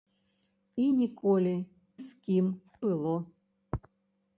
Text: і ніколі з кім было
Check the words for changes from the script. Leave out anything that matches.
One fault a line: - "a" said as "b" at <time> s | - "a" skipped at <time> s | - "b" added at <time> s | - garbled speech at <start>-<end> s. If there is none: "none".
none